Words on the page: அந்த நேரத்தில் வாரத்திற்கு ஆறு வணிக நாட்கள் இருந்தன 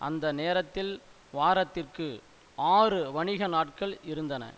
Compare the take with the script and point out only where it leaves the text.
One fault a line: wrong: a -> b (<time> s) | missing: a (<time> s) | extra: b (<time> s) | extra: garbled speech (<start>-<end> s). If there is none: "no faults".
no faults